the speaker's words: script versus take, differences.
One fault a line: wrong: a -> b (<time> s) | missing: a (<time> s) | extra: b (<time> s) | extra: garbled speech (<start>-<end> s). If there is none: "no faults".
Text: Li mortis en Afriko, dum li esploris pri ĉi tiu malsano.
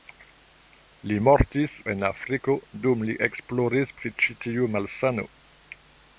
no faults